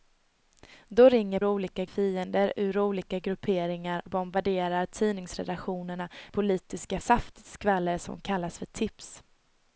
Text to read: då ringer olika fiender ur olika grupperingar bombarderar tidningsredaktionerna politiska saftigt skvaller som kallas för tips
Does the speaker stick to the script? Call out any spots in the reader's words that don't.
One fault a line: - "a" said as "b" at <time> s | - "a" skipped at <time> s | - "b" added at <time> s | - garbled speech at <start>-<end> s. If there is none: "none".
none